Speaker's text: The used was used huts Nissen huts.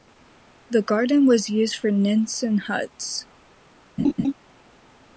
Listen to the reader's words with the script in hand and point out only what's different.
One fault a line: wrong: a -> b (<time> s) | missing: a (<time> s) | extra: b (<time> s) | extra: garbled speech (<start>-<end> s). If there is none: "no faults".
wrong: used -> garden (0.8 s)
wrong: huts -> for (1.8 s)